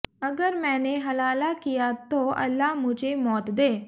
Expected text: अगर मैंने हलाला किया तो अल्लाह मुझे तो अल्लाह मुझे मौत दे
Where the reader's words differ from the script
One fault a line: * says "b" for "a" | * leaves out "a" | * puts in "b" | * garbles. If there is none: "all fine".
* leaves out "तो अल्लाह मुझे"